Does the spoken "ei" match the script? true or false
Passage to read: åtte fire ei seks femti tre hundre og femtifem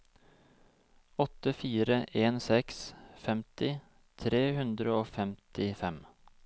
false